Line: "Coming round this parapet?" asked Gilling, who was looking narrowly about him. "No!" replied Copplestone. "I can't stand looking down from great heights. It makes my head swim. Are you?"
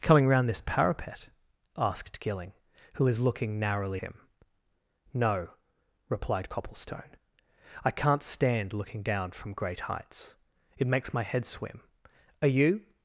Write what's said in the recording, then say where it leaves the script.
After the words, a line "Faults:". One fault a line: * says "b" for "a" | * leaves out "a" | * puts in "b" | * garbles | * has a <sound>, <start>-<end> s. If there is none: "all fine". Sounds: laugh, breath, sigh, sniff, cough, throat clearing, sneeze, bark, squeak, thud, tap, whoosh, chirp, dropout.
"Coming round this parapet?" asked Gilling, who was looking narrowly him. "No!" replied Copplestone. "I can't stand looking down from great heights. It makes my head swim. Are you?"
Faults:
* leaves out "about"